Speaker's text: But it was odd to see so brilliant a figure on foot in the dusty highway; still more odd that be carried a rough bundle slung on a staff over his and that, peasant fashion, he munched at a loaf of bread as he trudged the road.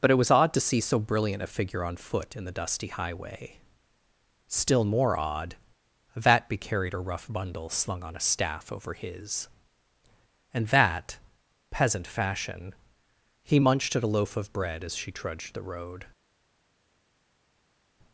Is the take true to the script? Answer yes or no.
no